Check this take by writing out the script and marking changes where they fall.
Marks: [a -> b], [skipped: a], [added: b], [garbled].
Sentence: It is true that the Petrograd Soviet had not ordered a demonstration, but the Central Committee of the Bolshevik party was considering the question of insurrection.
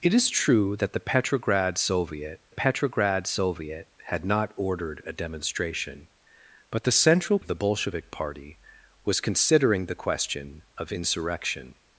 It is true that the Petrograd Soviet [added: Petrograd Soviet] had not ordered a demonstration, but the Central [skipped: Committee] of the Bolshevik party was considering the question of insurrection.